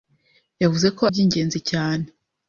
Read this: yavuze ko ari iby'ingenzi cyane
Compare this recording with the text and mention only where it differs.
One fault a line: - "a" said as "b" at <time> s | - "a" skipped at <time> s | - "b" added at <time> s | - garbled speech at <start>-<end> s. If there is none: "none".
- "ari" skipped at 1.0 s